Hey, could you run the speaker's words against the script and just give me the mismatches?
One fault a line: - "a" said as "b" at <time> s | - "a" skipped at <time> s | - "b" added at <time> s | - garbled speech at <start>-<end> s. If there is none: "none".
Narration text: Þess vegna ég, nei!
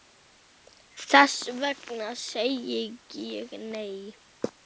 - "segi" added at 2.2 s